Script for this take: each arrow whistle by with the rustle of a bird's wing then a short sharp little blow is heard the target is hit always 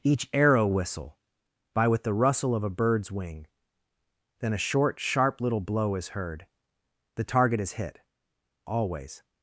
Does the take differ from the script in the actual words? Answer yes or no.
no